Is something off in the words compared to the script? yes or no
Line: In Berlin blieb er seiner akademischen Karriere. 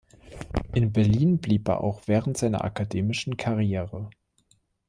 yes